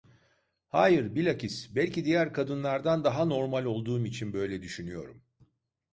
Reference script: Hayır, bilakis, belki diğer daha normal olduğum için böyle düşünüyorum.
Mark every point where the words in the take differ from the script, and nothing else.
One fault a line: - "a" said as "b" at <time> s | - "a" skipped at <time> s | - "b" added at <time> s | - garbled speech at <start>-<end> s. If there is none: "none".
- "kadınlardan" added at 2.3 s